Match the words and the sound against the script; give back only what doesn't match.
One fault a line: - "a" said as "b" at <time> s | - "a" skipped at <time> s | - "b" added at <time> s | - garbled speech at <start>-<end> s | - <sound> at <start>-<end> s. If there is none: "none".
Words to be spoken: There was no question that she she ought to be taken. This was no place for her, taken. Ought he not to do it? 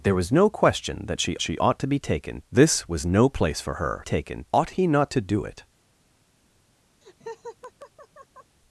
- laugh at 7.0-8.6 s